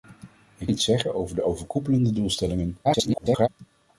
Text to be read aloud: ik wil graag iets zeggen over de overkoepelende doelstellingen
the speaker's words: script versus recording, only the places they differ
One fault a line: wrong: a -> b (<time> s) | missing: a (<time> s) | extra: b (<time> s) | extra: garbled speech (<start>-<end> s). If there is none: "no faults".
missing: wil graag (0.7 s)
extra: garbled speech (2.8-3.5 s)